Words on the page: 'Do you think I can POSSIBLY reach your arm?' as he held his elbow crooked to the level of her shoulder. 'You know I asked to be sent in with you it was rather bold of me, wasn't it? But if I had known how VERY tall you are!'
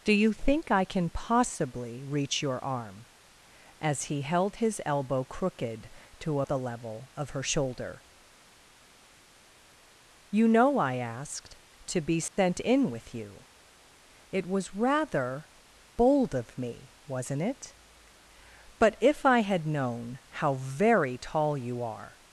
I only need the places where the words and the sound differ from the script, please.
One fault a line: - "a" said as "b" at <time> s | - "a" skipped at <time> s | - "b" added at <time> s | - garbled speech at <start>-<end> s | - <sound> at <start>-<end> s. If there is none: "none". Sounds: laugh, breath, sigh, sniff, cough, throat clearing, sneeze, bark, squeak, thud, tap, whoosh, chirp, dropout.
- dropout at 12.3-12.4 s